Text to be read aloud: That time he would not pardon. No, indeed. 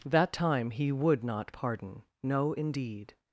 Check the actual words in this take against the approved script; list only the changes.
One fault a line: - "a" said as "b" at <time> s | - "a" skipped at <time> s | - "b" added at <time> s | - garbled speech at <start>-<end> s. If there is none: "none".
none